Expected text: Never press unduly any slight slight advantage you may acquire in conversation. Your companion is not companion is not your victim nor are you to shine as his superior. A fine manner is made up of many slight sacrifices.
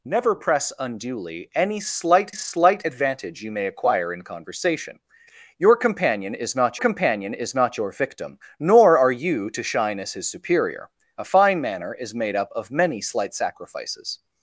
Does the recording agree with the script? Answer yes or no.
yes